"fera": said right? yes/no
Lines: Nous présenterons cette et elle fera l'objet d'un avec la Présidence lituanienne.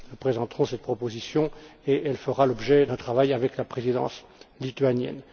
yes